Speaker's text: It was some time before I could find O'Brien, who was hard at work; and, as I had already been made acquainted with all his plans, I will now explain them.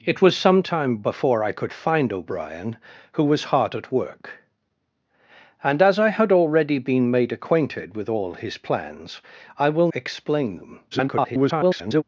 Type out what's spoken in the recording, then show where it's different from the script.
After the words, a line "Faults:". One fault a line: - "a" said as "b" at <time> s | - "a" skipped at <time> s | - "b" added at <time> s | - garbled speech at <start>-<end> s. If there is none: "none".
It was some time before I could find O'Brien, who was hard at work; and, as I had already been made acquainted with all his plans, I will explain them. [garbled]
Faults:
- "now" skipped at 9.9 s
- garbled speech at 10.9-12.0 s